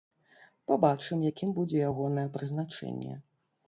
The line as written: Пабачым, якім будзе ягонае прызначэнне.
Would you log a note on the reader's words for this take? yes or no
no